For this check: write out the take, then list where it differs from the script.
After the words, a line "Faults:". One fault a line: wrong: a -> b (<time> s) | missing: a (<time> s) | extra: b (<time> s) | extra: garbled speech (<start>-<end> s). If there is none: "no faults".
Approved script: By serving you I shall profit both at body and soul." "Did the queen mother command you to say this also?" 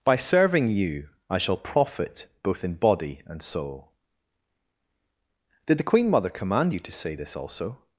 By serving you I shall profit both in body and soul." "Did the queen mother command you to say this also?"
Faults:
wrong: at -> in (2.6 s)